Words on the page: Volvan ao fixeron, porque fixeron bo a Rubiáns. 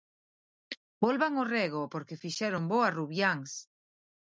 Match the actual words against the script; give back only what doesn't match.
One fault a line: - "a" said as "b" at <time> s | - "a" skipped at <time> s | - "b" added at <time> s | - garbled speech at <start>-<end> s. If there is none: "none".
- "fixeron" said as "rego" at 1.6 s